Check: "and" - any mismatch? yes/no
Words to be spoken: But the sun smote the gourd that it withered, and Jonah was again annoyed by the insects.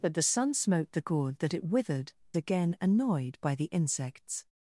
yes